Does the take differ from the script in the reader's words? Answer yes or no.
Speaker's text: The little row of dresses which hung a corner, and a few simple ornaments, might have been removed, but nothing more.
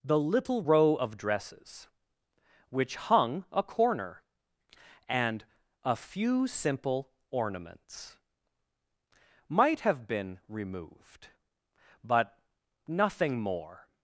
no